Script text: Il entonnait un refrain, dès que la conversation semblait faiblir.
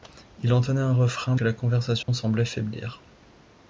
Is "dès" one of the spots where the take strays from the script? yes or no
yes